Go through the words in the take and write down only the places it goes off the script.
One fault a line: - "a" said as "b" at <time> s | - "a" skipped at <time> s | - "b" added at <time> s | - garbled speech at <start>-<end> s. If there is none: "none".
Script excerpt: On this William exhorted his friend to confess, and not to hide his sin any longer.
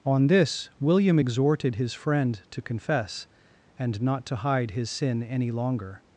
none